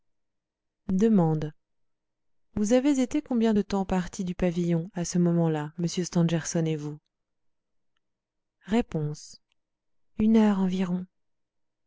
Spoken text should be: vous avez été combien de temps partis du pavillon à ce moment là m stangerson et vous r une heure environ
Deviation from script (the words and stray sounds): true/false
false